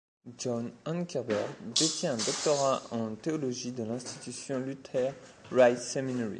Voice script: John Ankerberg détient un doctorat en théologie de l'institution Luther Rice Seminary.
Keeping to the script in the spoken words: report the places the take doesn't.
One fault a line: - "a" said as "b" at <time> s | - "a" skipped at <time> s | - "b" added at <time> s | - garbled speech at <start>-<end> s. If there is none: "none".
none